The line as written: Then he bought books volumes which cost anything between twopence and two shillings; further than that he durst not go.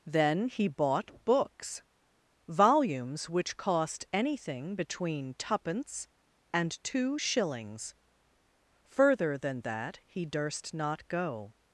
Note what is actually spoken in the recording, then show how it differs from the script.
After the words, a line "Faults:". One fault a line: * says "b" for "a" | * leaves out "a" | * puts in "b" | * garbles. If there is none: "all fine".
Then he bought books volumes which cost anything between twopence and two shillings; further than that he durst not go.
Faults:
all fine